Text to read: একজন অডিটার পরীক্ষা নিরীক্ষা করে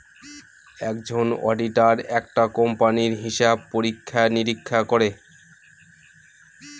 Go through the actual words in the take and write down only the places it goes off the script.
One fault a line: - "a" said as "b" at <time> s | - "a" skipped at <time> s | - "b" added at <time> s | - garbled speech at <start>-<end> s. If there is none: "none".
- "একটা কোম্পানির হিসাব" added at 2.2 s